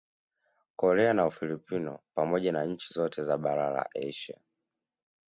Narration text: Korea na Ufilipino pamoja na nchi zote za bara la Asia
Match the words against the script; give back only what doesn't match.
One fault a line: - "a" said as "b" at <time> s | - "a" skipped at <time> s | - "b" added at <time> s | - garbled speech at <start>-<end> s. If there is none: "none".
none